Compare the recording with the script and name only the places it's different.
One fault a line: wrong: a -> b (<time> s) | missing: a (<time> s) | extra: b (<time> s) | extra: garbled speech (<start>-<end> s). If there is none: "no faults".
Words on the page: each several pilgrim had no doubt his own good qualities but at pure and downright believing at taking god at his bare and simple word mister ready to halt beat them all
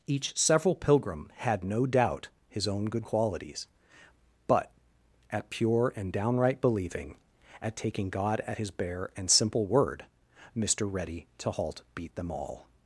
no faults